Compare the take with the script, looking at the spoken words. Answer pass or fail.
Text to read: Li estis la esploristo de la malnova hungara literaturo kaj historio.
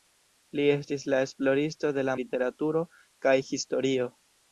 fail